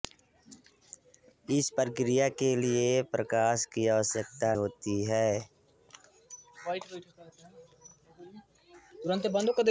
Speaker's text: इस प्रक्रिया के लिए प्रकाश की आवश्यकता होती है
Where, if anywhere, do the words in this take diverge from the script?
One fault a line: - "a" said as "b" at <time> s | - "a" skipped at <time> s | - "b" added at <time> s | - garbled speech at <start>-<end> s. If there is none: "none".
none